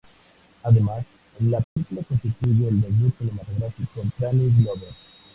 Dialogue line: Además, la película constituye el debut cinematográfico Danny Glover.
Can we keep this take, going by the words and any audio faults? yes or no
no